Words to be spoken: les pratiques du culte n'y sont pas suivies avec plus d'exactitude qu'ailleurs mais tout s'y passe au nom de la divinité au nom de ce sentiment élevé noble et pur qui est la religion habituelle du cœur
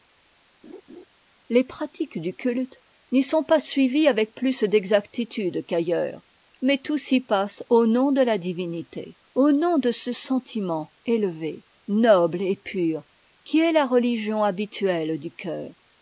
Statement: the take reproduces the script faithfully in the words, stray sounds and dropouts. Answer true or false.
false